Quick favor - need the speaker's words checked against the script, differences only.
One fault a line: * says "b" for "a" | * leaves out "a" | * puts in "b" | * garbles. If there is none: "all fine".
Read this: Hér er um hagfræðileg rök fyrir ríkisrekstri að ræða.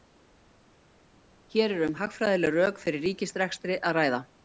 all fine